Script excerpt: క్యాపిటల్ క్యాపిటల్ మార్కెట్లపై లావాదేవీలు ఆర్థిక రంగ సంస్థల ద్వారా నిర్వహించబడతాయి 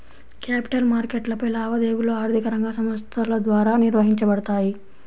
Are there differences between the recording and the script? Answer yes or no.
yes